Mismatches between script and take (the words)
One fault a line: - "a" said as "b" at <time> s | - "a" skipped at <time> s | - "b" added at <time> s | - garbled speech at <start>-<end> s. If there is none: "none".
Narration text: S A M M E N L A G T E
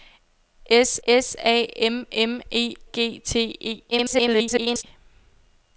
- "s" added at 1.1 s
- "N L A" skipped at 2.7 s
- garbled speech at 3.9-4.8 s